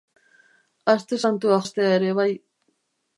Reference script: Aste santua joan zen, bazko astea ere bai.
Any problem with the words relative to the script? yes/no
yes